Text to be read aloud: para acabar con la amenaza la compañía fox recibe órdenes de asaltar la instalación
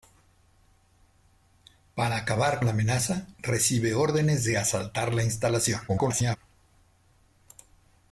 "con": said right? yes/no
no